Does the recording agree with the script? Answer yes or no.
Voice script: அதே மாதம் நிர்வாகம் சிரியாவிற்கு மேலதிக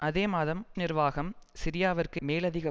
yes